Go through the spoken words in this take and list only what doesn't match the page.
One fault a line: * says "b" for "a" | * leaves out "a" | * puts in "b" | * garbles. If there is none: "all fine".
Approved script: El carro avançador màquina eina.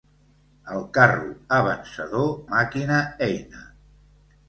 all fine